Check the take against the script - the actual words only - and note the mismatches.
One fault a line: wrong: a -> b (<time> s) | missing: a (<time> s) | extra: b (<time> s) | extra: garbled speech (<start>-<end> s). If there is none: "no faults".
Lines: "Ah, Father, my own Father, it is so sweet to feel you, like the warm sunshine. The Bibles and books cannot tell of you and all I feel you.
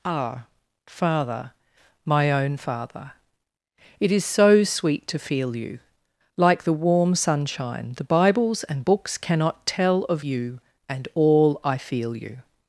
no faults